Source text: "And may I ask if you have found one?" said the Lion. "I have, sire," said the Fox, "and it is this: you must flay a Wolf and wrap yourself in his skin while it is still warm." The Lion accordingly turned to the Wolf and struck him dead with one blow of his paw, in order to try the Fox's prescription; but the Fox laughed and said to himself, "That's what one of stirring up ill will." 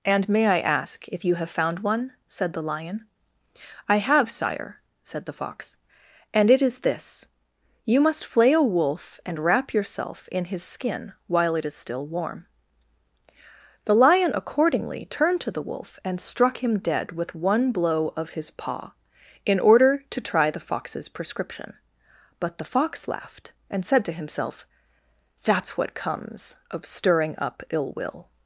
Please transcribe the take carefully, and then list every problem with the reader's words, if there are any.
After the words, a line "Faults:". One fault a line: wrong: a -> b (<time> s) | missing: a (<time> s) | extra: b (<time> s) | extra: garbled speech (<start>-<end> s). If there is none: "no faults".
"And may I ask if you have found one?" said the Lion. "I have, sire," said the Fox, "and it is this: you must flay a Wolf and wrap yourself in his skin while it is still warm." The Lion accordingly turned to the Wolf and struck him dead with one blow of his paw, in order to try the Fox's prescription; but the Fox laughed and said to himself, "That's what comes of stirring up ill will."
Faults:
wrong: one -> comes (25.9 s)